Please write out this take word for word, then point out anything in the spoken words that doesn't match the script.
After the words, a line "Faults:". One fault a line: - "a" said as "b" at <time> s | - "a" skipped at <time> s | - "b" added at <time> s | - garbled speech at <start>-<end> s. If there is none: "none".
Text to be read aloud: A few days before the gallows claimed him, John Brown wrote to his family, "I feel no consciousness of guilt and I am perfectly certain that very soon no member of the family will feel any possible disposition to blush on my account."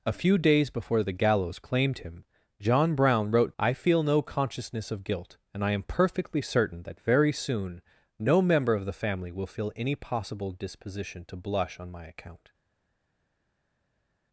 A few days before the gallows claimed him, John Brown wrote "I feel no consciousness of guilt and I am perfectly certain that very soon no member of the family will feel any possible disposition to blush on my account."
Faults:
- "to his family" skipped at 3.5 s